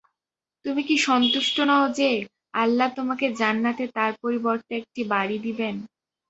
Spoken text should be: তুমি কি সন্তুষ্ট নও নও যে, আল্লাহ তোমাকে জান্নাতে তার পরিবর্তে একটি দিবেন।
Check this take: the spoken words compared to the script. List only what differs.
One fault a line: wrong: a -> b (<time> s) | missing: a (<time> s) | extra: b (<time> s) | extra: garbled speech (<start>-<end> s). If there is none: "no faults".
missing: নও (1.8 s)
extra: বাড়ী (5.1 s)